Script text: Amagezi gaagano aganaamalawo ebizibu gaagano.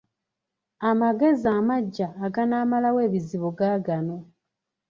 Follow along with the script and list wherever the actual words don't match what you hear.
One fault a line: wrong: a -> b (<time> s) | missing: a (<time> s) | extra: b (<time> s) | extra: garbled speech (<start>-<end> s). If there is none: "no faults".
wrong: gaagano -> amaggya (1.6 s)